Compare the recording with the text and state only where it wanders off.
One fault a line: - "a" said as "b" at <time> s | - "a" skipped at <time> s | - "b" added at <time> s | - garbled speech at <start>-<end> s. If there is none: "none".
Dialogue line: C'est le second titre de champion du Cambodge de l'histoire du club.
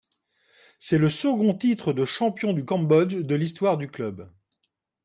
none